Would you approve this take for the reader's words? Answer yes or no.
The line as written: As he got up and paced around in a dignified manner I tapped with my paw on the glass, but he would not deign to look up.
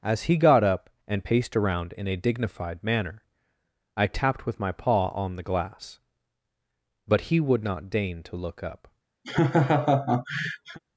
yes